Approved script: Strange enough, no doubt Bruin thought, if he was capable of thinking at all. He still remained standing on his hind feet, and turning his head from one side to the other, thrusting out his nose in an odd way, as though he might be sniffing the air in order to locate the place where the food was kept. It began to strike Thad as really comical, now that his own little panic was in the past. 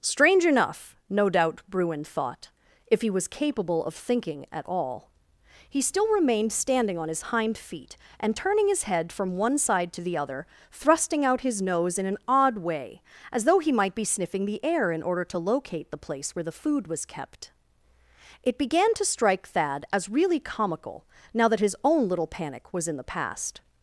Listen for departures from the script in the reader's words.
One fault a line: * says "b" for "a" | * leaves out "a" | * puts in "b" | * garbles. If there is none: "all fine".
all fine